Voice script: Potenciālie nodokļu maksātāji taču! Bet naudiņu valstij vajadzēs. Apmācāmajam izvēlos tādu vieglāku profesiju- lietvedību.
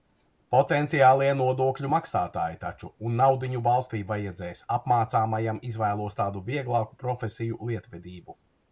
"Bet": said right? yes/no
no